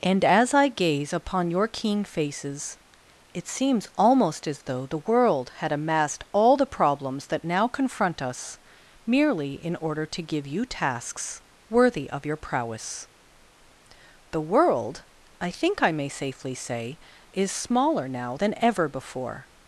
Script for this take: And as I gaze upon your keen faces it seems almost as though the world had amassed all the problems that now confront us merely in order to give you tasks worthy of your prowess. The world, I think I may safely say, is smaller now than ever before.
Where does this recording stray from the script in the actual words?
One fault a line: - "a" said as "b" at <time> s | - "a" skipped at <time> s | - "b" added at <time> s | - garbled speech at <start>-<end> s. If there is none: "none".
none